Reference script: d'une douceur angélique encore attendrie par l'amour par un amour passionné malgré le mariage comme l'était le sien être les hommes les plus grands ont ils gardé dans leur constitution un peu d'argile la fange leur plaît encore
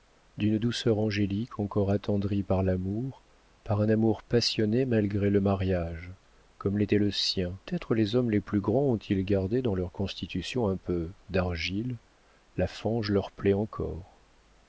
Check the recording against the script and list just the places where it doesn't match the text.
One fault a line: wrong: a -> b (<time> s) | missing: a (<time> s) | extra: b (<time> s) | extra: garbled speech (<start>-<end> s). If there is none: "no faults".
no faults